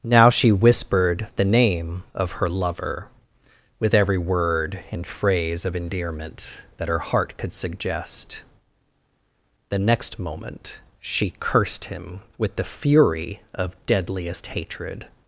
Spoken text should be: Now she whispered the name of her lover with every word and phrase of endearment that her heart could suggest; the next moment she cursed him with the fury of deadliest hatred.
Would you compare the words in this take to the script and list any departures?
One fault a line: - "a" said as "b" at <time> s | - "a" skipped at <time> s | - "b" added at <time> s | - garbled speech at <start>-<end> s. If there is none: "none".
none